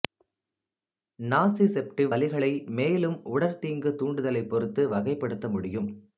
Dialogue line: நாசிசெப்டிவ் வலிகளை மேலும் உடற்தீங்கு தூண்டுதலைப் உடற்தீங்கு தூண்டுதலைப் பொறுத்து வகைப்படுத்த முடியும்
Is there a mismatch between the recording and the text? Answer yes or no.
yes